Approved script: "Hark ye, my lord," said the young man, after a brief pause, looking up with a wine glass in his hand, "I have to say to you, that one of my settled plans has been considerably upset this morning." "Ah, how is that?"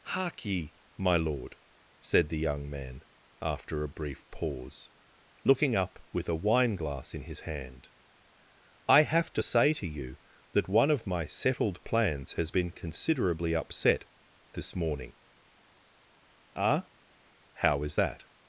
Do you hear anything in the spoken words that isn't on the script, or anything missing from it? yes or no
no